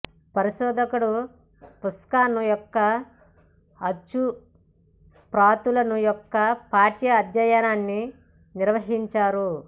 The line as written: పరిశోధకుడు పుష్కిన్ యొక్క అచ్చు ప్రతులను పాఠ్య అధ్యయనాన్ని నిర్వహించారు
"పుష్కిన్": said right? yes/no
yes